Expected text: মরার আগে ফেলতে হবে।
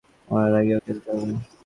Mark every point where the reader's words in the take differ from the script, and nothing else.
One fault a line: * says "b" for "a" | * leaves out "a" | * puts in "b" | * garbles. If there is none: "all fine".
all fine